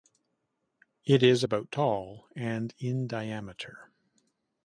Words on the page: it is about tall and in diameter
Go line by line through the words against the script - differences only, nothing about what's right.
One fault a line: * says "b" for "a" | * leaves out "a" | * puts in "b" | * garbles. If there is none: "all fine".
all fine